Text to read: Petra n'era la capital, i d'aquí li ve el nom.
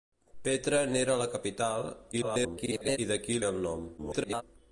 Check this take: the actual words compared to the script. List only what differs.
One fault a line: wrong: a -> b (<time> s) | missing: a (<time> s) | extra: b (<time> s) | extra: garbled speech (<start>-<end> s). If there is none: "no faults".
extra: garbled speech (2.1-3.0 s)
missing: li (3.4 s)
extra: garbled speech (4.0-4.4 s)